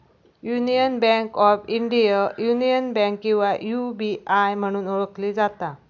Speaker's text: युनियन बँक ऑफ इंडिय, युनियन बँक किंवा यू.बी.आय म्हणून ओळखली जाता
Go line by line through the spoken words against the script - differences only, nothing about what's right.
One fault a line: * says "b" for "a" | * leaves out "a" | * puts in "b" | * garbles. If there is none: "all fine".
all fine